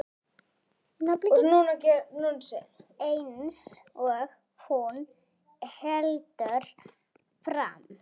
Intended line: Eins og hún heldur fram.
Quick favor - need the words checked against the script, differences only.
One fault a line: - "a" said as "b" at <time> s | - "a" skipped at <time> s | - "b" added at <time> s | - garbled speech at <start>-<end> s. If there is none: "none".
none